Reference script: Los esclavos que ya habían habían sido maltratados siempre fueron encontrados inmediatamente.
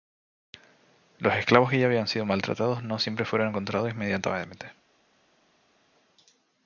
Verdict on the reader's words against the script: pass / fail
fail